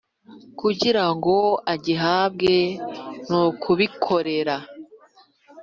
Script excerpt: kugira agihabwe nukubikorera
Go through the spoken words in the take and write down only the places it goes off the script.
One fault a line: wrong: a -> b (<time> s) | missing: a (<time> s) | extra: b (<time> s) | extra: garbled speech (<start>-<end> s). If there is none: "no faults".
extra: ngo (1.1 s)